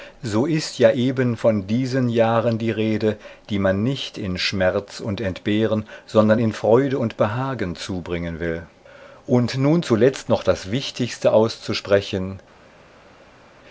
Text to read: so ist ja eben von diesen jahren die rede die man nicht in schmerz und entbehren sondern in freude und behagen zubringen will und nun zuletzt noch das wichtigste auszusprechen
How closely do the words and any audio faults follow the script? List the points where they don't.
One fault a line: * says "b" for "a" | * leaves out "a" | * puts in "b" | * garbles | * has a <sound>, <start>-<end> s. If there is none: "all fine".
all fine